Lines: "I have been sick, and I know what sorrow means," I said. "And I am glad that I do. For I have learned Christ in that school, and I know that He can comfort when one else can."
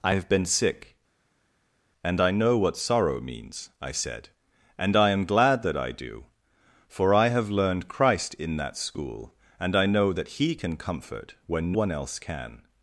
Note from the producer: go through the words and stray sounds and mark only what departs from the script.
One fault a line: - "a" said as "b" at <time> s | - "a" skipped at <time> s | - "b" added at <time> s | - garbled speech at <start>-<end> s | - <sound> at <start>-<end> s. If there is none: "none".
none